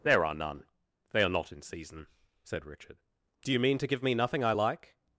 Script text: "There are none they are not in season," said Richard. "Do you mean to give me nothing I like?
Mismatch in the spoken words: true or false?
false